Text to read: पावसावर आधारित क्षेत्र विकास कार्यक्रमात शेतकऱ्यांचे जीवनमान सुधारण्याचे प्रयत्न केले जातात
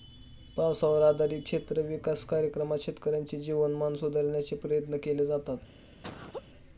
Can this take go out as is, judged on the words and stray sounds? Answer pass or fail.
fail